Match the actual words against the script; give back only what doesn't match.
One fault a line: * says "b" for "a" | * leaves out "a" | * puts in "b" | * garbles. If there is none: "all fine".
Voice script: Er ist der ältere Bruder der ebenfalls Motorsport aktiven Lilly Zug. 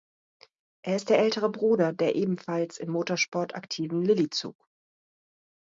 * puts in "im"